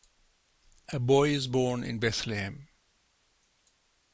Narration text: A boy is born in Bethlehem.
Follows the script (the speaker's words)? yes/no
yes